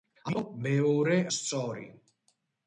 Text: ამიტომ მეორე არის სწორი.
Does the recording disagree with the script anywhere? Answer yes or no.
yes